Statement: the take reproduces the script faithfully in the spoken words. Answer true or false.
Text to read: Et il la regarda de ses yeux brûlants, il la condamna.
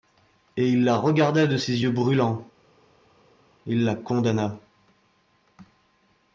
true